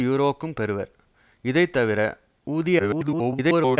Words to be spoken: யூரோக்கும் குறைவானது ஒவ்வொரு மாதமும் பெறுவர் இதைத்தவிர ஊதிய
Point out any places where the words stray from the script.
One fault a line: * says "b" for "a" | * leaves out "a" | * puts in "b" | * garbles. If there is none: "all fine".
* leaves out "குறைவானது ஒவ்வொரு மாதமும்"
* garbles